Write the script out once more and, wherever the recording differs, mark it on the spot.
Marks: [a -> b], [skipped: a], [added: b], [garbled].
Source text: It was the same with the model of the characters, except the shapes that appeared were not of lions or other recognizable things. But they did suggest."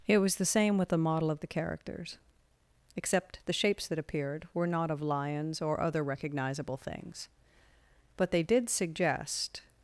It was the same with the model of the characters, except the shapes that appeared were not of lions or other recognizable things. But they did suggest."